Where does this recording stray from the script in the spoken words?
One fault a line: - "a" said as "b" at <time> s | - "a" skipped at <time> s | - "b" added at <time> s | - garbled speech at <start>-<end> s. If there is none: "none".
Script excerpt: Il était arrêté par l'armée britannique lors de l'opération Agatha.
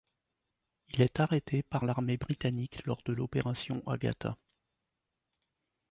- "était" said as "est" at 1.0 s